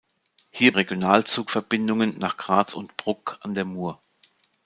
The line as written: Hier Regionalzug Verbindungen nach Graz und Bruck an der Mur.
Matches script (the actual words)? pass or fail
pass